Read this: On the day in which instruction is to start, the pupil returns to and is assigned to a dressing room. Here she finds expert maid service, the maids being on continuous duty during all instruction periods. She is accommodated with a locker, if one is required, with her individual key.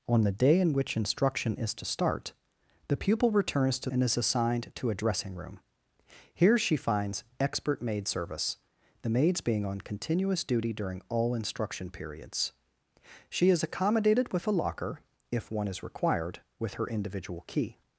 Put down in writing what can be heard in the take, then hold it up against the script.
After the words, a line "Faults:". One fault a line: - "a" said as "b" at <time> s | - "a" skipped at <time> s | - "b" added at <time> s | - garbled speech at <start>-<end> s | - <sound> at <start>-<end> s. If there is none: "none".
On the day in which instruction is to start, the pupil returns to and is assigned to a dressing room. Here she finds expert maid service, the maids being on continuous duty during all instruction periods. She is accommodated with a locker, if one is required, with her individual key.
Faults:
none